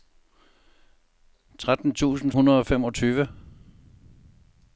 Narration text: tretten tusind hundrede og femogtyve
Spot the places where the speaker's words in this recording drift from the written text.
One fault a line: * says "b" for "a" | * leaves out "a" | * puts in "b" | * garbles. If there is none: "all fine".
all fine